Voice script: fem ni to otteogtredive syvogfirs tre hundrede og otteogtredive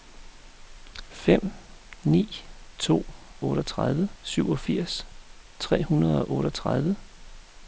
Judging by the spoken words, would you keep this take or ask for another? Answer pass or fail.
pass